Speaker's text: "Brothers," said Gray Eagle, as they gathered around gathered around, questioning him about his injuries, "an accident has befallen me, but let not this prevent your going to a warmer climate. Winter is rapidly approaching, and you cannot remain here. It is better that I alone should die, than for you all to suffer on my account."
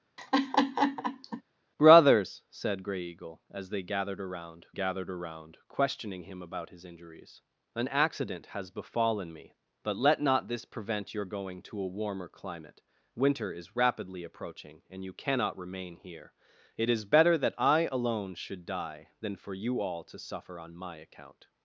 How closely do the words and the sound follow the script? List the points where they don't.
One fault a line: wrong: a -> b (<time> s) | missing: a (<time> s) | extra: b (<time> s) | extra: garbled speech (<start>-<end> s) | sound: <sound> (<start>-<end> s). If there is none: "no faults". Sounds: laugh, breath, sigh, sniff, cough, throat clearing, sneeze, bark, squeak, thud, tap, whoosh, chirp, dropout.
sound: laugh (0.2-1.4 s)